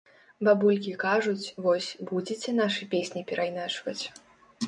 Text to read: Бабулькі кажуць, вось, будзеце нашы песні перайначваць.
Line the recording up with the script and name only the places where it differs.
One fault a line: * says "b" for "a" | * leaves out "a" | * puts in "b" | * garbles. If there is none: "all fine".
all fine